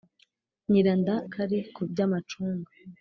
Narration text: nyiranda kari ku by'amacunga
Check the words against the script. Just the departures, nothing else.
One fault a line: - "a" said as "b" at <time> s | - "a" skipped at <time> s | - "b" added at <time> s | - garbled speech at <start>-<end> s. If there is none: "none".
none